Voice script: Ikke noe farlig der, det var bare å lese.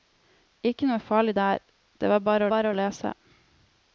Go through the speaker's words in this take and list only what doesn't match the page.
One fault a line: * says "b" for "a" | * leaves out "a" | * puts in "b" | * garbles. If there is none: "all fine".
* puts in "bare"